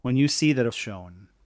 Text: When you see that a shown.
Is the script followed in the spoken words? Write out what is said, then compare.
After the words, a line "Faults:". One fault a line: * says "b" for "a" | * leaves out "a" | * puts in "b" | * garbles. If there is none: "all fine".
When you see that a shown.
Faults:
all fine